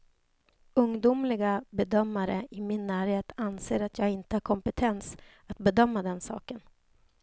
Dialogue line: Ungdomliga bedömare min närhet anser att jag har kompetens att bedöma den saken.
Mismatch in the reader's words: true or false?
true